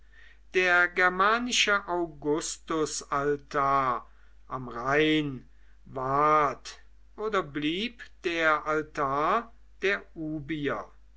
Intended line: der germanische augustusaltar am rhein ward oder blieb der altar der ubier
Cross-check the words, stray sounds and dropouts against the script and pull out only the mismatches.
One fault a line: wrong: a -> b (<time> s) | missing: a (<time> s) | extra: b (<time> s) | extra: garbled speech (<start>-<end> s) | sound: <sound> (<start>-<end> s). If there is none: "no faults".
no faults